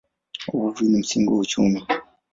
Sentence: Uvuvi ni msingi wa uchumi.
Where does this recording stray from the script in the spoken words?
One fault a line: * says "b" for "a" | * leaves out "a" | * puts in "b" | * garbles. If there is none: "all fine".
all fine